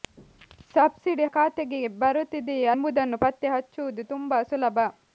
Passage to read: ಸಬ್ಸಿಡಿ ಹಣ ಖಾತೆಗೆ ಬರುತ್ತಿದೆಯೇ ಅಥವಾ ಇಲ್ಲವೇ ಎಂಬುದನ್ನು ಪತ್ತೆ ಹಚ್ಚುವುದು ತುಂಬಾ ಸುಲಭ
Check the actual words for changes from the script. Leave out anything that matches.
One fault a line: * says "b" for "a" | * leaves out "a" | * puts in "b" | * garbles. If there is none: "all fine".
* leaves out "ಹಣ"
* leaves out "ಅಥವಾ ಇಲ್ಲವೇ"